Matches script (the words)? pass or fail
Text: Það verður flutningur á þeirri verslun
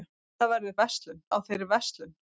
fail